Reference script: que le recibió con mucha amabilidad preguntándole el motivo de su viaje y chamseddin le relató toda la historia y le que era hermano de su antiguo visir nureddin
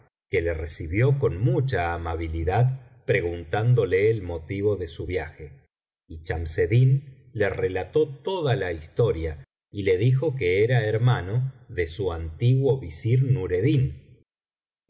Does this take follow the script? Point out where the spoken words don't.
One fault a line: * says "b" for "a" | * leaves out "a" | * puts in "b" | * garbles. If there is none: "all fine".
* puts in "dijo"